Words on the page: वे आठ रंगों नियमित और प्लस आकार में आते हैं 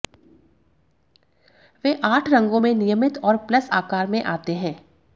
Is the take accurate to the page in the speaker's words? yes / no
no